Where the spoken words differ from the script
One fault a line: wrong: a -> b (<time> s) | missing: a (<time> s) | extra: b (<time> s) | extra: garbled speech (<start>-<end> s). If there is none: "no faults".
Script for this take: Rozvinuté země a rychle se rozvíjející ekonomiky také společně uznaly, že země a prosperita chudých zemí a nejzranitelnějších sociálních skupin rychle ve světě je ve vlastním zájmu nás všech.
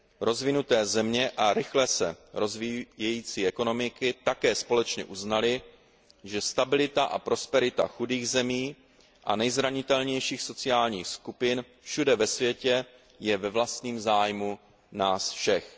wrong: země -> stabilita (6.4 s)
wrong: rychle -> všude (11.8 s)